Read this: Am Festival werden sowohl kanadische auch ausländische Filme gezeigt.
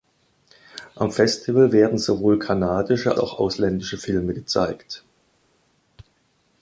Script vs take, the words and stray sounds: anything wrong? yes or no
no